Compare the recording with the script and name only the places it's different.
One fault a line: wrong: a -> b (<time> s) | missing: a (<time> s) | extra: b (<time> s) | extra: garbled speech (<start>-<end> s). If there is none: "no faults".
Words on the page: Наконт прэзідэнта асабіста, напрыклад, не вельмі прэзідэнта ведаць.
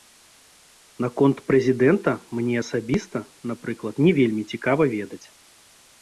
extra: мне (2.4 s)
wrong: прэзідэнта -> цікава (4.5 s)